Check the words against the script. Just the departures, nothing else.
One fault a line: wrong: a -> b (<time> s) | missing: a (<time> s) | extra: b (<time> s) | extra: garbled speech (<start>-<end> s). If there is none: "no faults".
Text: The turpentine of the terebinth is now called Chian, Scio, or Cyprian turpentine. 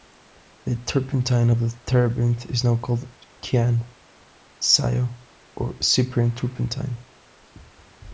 no faults